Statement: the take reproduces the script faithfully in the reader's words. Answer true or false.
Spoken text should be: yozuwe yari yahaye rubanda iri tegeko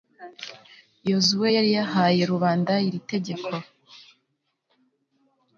true